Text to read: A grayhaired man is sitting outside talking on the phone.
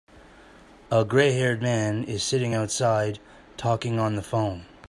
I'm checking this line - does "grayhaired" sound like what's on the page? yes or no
yes